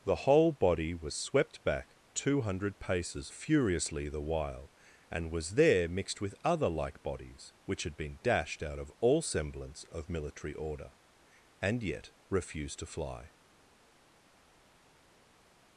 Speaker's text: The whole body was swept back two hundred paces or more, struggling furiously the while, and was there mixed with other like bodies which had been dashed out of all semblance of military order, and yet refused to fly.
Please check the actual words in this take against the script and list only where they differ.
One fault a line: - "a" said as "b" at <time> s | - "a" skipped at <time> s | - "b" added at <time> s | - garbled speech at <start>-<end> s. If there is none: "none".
- "or more struggling" skipped at 3.3 s